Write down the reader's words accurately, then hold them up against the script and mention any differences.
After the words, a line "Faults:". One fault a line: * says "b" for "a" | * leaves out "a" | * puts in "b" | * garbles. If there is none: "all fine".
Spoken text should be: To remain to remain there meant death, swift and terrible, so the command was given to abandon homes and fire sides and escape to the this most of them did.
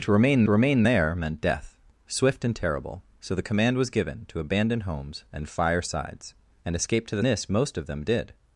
To remain to remain there meant death, swift and terrible, so the command was given to abandon homes and fire sides and escape to the this most of them did.
Faults:
all fine